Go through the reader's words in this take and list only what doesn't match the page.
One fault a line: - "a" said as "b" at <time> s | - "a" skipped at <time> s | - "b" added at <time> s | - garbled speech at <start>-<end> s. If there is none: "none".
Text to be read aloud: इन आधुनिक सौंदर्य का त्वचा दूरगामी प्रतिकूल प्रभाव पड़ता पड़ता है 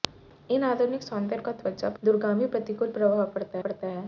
none